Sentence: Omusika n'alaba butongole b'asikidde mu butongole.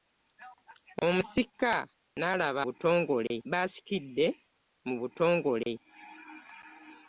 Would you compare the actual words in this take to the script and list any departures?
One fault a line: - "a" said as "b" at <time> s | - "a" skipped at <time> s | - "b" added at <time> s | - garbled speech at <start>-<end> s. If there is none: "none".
none